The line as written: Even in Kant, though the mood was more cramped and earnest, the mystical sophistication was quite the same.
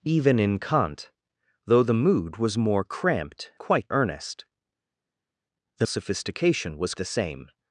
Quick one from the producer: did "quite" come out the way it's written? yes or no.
no